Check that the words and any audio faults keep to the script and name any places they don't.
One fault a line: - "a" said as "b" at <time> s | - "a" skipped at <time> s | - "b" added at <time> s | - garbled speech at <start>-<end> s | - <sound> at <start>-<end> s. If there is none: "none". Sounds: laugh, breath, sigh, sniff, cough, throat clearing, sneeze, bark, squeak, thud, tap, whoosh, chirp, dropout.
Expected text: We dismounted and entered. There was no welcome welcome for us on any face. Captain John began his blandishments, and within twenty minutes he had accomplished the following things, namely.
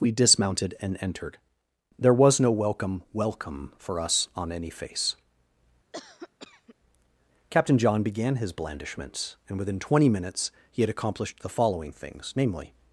- cough at 5.9-6.8 s